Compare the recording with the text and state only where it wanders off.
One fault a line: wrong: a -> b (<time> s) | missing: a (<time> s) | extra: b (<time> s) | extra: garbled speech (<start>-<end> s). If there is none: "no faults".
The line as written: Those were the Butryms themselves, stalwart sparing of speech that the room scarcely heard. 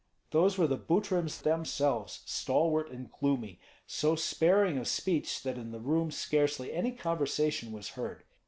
extra: and gloomy so (2.9 s)
extra: in (5.6 s)
extra: any conversation was (6.7 s)